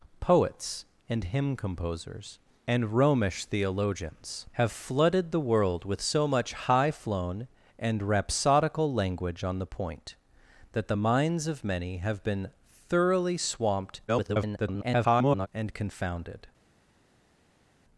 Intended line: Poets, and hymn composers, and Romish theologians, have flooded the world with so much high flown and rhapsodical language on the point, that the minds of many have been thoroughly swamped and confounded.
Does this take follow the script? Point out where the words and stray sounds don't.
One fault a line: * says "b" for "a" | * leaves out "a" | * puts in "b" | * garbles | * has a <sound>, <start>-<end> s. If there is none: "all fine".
* garbles